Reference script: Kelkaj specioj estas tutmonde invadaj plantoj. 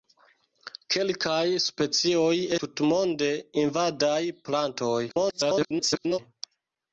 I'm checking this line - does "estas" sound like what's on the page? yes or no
no